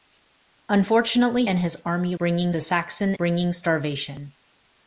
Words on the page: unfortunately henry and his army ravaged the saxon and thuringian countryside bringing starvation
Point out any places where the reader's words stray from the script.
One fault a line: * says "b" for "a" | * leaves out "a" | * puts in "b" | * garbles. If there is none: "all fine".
* leaves out "henry"
* says "bringing" for "ravaged"
* leaves out "and thuringian countryside"